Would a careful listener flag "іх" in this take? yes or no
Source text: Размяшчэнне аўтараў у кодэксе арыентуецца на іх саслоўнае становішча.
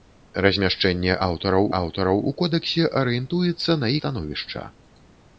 yes